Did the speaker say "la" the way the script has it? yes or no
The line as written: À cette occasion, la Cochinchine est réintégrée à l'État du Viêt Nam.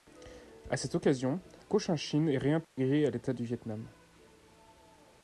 no